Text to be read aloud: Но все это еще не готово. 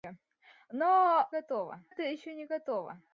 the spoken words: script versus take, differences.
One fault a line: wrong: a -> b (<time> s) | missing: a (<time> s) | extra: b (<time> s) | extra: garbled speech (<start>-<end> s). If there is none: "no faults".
wrong: все -> готово (1.3 s)